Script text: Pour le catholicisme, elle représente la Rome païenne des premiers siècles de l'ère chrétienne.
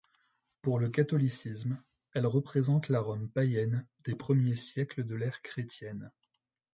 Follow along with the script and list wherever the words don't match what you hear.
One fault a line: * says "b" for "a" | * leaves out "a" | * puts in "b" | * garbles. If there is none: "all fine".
all fine